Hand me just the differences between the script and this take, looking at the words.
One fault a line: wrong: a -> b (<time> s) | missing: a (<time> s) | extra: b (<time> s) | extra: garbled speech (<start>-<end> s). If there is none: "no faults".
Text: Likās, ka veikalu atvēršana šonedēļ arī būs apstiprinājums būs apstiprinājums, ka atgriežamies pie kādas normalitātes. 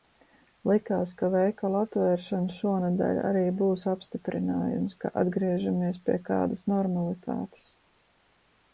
missing: būs apstiprinājums (5.0 s)